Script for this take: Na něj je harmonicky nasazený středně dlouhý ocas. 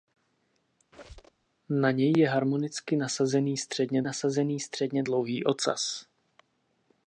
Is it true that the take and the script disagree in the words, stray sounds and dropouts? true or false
true